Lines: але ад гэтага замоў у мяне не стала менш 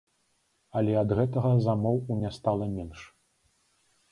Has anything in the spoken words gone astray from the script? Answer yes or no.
yes